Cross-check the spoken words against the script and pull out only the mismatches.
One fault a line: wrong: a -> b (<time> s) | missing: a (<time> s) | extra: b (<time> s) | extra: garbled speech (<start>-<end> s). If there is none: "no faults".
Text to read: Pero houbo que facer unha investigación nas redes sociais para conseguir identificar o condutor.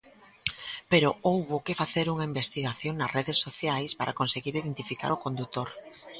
no faults